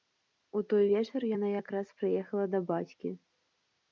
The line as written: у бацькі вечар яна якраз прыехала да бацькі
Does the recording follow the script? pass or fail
fail